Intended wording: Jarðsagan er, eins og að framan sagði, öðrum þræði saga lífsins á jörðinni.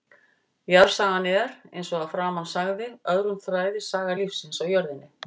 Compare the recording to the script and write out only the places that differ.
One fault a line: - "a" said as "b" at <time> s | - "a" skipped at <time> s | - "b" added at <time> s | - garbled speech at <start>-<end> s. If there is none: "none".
none